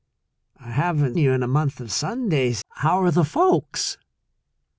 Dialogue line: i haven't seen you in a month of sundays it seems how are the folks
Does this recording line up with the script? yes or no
no